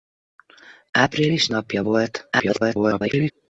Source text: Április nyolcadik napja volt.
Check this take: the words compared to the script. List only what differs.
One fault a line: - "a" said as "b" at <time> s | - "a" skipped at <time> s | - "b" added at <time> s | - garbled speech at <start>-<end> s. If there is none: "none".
- "nyolcadik" skipped at 1.5 s
- garbled speech at 2.3-3.3 s